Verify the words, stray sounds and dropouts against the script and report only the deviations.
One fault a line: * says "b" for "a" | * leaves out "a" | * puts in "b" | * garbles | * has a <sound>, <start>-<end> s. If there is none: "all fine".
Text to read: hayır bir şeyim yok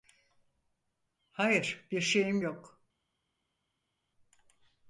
all fine